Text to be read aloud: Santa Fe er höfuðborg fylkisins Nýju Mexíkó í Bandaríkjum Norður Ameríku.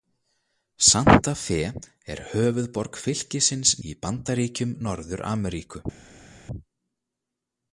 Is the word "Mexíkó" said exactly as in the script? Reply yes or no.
no